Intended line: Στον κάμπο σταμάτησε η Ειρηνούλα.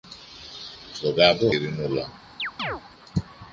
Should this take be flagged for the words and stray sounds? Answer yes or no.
yes